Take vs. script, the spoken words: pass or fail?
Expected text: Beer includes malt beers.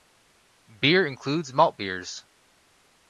pass